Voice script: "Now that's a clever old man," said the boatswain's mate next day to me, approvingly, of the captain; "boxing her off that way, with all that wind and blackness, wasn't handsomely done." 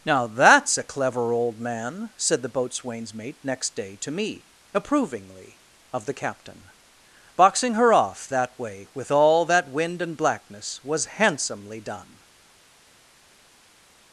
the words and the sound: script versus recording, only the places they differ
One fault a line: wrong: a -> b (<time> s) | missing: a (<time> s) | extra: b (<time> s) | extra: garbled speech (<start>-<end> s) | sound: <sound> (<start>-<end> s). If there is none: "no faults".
wrong: wasn't -> was (10.8 s)